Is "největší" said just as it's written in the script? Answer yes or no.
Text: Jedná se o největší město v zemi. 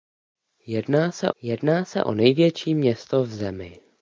yes